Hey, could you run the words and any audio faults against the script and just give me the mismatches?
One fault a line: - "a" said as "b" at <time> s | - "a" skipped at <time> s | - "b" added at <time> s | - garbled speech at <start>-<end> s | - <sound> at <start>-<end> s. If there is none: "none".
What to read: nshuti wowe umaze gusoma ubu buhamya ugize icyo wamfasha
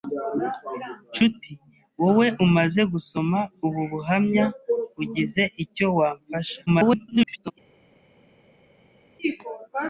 - garbled speech at 6.7-7.5 s